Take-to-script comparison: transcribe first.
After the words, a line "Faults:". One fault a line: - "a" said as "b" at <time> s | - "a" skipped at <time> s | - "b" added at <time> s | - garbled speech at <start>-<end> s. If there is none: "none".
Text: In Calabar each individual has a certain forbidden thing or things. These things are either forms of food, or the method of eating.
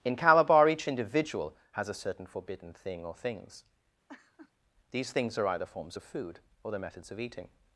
In Calabar each individual has a certain forbidden thing or things. These things are either forms of food, or the methods of eating.
Faults:
- "method" said as "methods" at 6.8 s